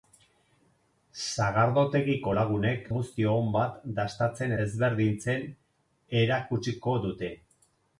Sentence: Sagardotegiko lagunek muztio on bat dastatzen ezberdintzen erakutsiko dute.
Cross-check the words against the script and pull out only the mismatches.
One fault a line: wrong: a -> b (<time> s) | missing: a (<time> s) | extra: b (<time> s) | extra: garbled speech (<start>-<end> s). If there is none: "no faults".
no faults